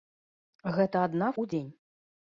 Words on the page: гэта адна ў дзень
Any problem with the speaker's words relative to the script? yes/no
no